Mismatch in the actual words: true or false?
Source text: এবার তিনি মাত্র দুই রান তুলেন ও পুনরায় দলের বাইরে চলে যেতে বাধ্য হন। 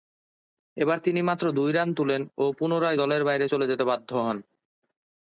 false